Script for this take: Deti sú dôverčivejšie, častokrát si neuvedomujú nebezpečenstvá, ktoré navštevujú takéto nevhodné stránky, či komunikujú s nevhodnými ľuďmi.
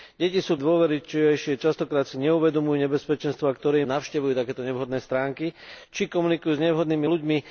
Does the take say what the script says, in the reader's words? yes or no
yes